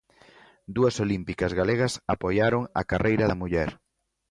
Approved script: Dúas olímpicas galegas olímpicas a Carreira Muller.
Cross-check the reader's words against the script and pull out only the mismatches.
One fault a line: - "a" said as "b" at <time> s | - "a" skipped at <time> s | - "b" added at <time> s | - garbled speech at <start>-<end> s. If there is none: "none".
- "olímpicas" said as "apoiaron" at 2.1 s
- "da" added at 3.3 s